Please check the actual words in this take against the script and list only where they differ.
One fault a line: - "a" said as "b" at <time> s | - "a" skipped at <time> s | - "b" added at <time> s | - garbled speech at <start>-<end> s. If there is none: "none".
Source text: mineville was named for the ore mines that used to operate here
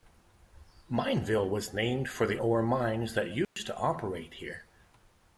none